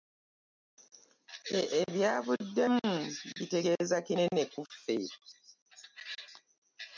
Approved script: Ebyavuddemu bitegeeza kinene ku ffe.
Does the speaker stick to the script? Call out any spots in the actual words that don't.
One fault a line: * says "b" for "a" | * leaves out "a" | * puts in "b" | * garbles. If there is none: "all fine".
all fine